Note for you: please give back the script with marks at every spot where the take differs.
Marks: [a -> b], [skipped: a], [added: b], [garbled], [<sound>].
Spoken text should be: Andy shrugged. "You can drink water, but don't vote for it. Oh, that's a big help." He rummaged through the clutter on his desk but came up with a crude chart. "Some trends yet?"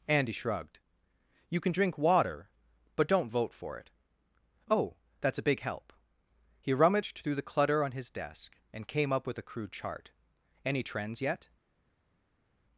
Andy shrugged. "You can drink water, but don't vote for it. Oh, that's a big help." He rummaged through the clutter on his desk [but -> and] came up with a crude chart. ["Some -> Any] trends yet?"